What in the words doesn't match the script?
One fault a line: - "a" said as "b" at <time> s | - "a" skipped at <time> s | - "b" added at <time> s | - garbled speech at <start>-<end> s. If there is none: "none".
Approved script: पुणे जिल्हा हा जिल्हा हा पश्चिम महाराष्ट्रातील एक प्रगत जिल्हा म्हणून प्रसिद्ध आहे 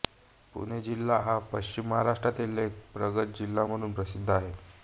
- "जिल्हा हा" skipped at 1.4 s